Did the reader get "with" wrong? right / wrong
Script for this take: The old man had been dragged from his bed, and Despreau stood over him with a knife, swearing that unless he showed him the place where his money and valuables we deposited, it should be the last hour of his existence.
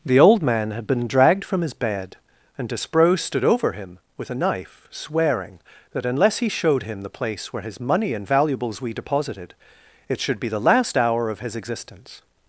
right